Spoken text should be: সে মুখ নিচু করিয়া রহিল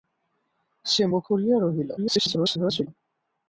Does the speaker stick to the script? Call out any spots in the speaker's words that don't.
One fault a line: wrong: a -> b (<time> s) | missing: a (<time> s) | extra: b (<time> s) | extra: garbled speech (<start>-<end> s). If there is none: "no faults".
missing: নিচু (1.2 s)
extra: garbled speech (2.0-2.9 s)